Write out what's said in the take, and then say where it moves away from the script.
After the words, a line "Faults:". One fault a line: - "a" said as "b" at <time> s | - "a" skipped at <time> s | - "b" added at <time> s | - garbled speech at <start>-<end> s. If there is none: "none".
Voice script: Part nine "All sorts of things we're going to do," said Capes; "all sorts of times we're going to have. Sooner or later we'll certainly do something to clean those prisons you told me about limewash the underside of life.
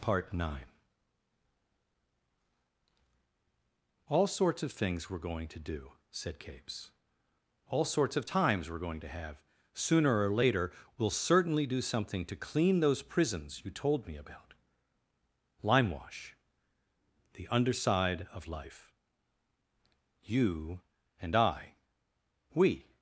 Part nine "All sorts of things we're going to do," said Capes; "all sorts of times we're going to have. Sooner or later we'll certainly do something to clean those prisons you told me about limewash the underside of life. You and I. We
Faults:
- "You and I We" added at 20.3 s